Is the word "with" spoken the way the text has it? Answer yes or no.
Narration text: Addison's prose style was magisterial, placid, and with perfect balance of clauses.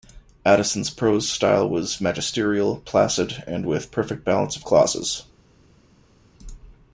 yes